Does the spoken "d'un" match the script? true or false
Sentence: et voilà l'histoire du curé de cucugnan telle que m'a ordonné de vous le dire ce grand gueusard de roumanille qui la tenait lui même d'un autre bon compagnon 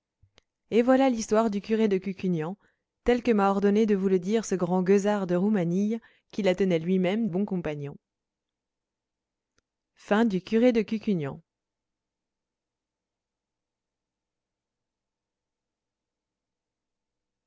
false